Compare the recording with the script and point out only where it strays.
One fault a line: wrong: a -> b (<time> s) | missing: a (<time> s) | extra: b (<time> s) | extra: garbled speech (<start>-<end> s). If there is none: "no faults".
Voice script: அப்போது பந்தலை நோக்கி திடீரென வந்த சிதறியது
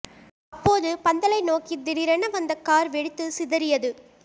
extra: கார் வெடித்து (2.6 s)